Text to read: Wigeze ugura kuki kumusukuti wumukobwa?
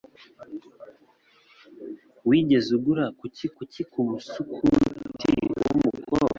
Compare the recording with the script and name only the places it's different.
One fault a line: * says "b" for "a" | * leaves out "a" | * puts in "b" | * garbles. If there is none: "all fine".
* puts in "kuki"